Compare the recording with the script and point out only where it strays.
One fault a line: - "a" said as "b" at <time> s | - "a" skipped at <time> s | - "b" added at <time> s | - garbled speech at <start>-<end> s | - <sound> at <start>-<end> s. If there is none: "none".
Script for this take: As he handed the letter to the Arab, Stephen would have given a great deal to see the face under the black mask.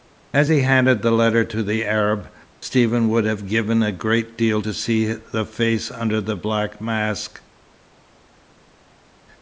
none